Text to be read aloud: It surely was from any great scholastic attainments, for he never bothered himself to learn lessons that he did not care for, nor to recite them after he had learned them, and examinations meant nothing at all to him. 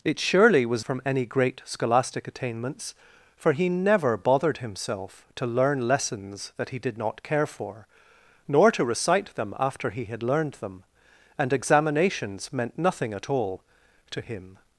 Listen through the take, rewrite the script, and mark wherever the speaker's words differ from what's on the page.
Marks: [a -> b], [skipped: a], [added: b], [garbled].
It surely was from any great scholastic attainments, for he never bothered himself to learn lessons that he did not care for, nor to recite them after he had learned them, and examinations meant nothing at all to him.